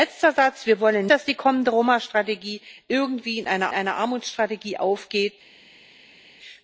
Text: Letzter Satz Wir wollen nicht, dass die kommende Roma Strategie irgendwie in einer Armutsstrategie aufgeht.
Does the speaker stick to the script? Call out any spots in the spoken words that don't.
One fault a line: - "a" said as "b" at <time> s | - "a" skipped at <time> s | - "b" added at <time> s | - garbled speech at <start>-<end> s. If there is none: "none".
- "nicht" skipped at 1.1 s
- "einer" added at 3.7 s